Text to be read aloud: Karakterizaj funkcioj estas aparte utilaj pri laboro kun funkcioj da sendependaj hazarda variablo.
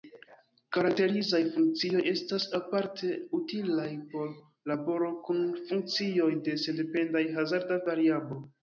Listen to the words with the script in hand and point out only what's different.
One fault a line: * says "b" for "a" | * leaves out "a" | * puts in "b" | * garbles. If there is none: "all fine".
* says "por" for "pri"
* says "de" for "da"